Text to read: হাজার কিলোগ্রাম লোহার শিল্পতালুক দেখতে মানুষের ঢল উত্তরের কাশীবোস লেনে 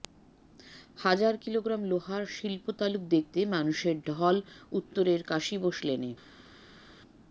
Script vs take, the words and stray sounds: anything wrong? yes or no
no